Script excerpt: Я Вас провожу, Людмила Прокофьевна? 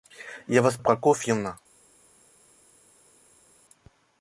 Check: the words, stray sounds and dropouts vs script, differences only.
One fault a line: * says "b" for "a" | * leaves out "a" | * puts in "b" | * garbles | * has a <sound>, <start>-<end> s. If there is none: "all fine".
* leaves out "провожу Людмила"